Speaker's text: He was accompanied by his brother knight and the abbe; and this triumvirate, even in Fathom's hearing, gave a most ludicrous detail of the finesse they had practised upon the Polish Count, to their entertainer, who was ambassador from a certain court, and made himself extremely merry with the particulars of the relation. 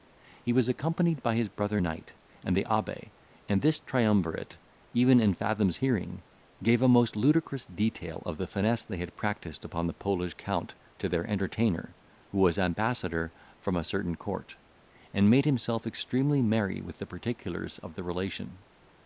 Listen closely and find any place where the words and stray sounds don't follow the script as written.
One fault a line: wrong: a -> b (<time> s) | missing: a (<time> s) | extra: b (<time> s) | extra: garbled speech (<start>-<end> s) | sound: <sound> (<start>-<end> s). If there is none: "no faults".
no faults